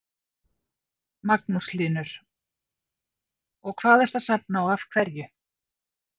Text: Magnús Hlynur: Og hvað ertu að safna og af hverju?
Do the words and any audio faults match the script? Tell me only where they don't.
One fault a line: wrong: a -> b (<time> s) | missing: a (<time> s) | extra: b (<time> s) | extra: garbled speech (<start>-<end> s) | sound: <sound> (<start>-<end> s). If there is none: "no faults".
no faults